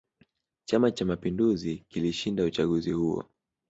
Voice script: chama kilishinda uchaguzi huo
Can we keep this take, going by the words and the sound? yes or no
no